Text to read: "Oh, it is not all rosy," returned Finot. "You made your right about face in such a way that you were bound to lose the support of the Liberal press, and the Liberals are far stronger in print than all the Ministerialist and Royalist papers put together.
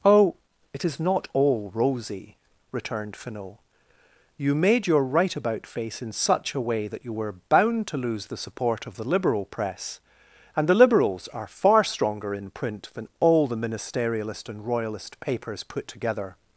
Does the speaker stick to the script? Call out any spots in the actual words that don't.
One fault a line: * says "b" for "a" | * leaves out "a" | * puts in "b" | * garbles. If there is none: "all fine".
all fine